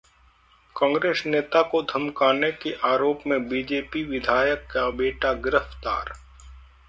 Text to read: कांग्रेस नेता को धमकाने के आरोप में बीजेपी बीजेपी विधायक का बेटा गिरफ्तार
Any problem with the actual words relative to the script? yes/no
yes